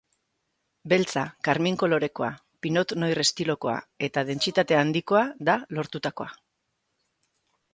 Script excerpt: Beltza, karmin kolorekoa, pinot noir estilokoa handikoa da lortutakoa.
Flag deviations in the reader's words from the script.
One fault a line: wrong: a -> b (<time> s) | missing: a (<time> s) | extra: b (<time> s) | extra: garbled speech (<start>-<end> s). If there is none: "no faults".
extra: eta dentsitate (4.1 s)